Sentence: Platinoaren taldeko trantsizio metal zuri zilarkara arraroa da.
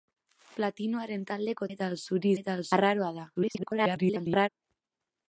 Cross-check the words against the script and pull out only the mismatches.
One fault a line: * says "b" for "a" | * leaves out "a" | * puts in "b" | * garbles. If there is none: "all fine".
* leaves out "trantsizio"
* says "metal" for "zilarkara"
* garbles